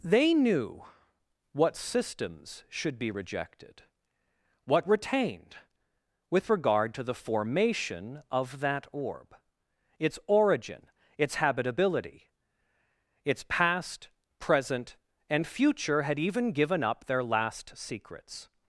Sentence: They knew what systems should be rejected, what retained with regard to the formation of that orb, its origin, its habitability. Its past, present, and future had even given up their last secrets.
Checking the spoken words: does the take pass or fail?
pass